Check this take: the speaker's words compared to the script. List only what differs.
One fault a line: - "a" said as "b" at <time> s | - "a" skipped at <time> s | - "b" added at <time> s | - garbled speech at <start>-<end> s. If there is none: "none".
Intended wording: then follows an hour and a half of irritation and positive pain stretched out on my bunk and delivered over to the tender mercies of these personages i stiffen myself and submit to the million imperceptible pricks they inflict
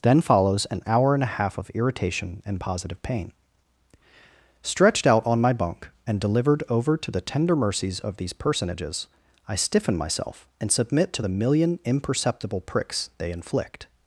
none